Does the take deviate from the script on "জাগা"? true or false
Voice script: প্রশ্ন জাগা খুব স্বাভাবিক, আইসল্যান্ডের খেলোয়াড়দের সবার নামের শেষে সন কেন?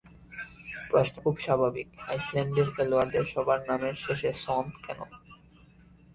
true